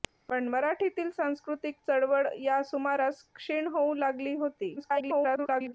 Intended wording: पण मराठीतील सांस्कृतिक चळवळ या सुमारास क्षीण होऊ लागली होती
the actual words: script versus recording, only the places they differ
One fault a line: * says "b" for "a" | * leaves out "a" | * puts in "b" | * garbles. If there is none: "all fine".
* garbles